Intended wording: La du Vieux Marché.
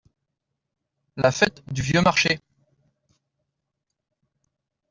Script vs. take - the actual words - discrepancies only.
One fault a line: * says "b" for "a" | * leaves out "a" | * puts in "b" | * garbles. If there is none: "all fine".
* puts in "fête"